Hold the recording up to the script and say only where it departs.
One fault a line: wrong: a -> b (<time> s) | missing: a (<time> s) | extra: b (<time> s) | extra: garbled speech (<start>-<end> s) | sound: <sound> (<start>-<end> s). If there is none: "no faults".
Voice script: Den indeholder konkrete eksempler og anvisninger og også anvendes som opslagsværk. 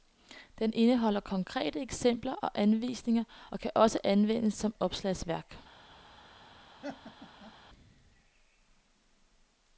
extra: kan (3.6 s)
sound: laugh (6.8-7.5 s)